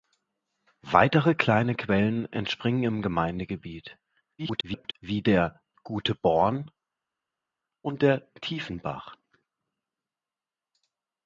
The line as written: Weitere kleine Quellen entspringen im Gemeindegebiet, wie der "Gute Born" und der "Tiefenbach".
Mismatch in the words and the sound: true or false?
true